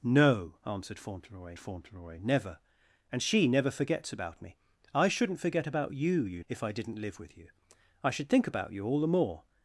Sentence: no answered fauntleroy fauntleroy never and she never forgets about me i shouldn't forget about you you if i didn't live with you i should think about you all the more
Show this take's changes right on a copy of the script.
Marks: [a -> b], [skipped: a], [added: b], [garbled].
no answered fauntleroy fauntleroy never and she never forgets about me i shouldn't forget about you you if i didn't live with you i should think about you all the more